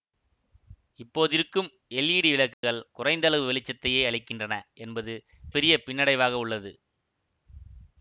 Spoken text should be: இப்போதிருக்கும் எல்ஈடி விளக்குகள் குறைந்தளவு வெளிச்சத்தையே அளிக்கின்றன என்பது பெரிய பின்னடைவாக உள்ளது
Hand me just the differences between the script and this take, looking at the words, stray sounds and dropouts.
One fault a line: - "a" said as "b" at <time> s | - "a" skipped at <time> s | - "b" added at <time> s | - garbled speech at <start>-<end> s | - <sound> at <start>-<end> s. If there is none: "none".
- dropout at 2.5-2.6 s